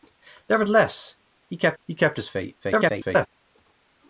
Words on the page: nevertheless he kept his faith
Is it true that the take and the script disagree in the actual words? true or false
true